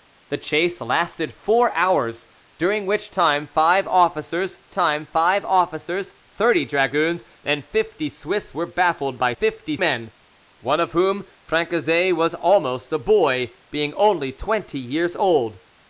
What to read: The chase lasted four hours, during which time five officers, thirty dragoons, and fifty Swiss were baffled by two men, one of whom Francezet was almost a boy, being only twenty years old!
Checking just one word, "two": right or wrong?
wrong